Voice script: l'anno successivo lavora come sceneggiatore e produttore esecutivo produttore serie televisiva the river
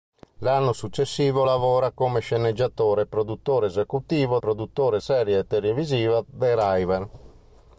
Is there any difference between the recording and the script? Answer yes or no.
no